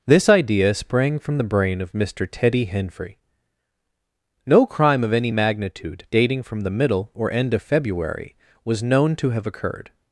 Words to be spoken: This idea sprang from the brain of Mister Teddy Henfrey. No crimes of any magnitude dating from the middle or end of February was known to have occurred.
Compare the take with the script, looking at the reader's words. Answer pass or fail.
fail